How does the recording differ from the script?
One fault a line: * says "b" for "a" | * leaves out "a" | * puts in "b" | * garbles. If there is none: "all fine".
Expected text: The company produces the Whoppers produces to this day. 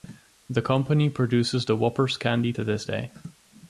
* says "candy" for "produces"